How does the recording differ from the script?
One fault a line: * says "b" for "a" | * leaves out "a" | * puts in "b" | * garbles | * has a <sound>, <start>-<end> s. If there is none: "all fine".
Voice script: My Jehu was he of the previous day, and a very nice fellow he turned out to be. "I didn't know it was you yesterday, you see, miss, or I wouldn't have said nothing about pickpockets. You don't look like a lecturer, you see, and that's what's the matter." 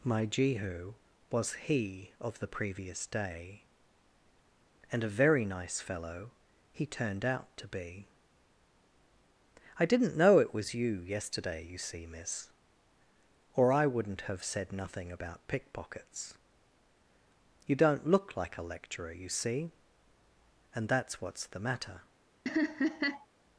* has a laugh, 22.5-23.3 s